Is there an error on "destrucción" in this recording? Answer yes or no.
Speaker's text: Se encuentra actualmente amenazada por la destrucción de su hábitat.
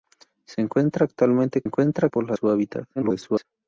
yes